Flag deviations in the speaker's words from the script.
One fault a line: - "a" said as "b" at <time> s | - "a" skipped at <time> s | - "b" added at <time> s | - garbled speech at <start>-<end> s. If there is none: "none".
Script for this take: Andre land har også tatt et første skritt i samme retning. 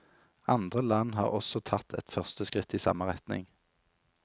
none